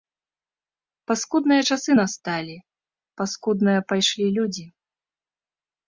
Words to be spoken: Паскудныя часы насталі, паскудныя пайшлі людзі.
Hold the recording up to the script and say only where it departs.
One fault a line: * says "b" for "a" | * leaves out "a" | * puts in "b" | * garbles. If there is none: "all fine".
all fine